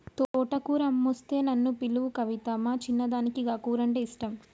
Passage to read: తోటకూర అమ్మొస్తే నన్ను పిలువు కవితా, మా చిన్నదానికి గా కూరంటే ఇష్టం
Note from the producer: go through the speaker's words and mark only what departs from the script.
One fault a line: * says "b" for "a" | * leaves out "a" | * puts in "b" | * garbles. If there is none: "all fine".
all fine